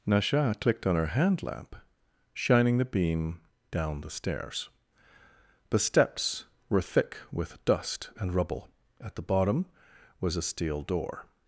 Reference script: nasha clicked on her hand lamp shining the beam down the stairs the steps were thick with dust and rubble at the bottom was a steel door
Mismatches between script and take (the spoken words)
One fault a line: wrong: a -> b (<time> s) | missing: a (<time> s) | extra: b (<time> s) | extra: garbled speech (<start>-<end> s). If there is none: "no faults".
no faults